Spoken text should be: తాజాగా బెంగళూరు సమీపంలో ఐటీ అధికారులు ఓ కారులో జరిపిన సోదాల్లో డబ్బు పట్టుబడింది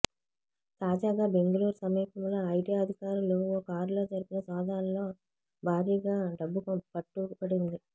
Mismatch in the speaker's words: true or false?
true